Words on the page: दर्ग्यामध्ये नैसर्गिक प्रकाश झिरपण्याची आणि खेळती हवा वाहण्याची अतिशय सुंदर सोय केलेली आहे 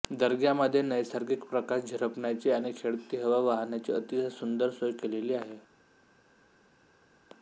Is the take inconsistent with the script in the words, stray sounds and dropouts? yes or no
no